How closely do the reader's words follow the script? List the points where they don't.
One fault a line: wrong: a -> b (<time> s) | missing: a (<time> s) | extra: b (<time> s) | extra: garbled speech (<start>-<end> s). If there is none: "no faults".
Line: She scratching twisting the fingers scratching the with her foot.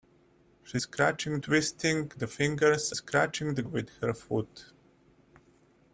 no faults